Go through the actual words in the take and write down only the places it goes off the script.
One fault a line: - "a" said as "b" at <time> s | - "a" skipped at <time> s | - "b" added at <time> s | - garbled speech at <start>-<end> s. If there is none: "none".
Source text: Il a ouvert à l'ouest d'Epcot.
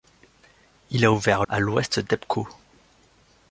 none